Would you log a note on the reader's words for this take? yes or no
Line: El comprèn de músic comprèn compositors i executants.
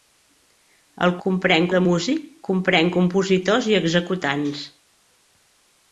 no